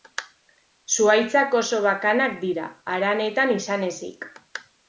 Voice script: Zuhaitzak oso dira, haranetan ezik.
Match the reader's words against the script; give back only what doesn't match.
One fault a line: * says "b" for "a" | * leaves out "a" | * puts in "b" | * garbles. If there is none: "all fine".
* puts in "bakanak"
* puts in "izan"